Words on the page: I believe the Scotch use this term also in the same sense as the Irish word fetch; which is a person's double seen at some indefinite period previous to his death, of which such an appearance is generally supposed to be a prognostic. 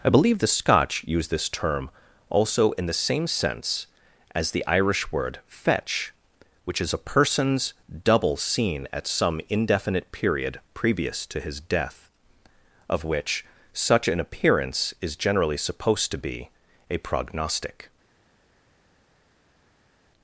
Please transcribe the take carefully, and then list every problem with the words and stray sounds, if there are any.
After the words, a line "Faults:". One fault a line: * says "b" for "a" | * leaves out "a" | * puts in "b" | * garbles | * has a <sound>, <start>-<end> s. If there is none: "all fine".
I believe the Scotch use this term also in the same sense as the Irish word fetch; which is a person's double seen at some indefinite period previous to his death, of which such an appearance is generally supposed to be a prognostic.
Faults:
all fine